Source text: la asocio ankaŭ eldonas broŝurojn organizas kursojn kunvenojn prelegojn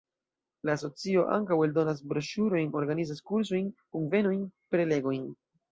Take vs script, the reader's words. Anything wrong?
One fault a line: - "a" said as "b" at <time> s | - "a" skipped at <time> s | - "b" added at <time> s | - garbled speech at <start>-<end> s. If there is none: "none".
none